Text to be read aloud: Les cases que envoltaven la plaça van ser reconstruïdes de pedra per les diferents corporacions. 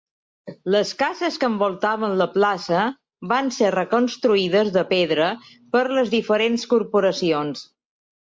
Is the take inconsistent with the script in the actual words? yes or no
no